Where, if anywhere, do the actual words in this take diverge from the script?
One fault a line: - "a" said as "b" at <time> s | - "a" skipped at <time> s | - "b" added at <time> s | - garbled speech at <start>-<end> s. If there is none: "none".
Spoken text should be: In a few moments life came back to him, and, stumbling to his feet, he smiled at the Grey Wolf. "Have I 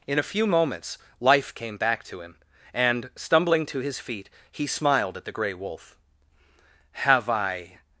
none